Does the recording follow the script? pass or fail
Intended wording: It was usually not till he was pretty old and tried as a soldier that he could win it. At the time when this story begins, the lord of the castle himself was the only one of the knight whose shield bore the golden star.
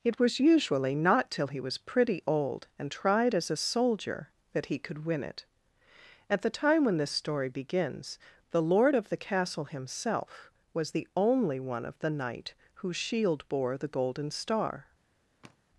pass